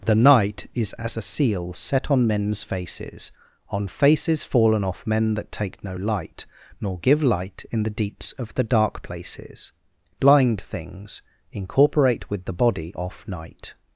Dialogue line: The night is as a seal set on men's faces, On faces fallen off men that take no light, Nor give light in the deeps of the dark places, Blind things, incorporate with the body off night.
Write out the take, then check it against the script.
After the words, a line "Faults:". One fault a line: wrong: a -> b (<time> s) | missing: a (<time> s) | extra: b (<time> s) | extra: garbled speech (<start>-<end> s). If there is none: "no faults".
The night is as a seal set on men's faces, On faces fallen off men that take no light, Nor give light in the deeps of the dark places, Blind things, incorporate with the body off night.
Faults:
no faults